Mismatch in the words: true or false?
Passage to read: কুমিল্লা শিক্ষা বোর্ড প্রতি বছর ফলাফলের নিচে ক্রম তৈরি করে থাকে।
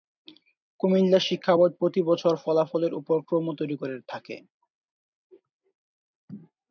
true